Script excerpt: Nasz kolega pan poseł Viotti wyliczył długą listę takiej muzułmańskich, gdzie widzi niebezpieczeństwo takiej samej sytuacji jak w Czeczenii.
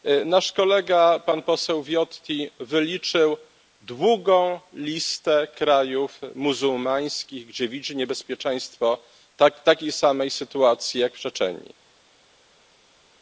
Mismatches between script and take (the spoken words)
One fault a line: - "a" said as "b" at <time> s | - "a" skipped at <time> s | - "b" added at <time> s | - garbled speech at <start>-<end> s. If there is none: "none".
- "takiej" said as "krajów" at 5.5 s